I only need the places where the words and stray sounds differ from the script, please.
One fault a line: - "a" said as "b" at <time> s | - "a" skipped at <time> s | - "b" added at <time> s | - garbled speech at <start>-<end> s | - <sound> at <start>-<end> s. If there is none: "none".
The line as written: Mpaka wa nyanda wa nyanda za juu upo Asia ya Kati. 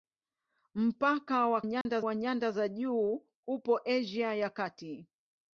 - dropout at 1.8-1.9 s